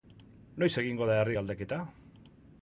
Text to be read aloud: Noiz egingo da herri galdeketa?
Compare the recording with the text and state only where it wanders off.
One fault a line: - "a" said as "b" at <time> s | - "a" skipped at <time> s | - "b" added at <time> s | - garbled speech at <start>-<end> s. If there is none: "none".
none